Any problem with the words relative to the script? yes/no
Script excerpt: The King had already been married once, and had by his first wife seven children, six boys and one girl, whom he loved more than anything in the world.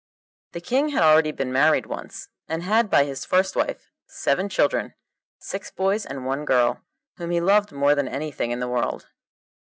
no